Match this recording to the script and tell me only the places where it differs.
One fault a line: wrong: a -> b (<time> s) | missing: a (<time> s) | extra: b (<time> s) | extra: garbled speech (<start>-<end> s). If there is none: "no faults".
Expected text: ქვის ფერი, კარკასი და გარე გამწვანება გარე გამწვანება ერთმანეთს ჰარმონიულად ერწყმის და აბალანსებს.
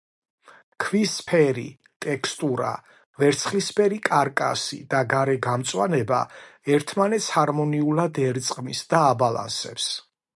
extra: ტექსტურა ვერცხლისფერი (2.0 s)
missing: გარე გამწვანება (6.2 s)